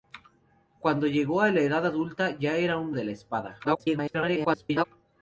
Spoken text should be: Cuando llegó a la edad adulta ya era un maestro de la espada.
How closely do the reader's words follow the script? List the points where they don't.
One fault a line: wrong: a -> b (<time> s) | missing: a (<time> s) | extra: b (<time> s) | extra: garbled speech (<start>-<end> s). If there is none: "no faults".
missing: maestro (2.9 s)
extra: garbled speech (3.6-4.9 s)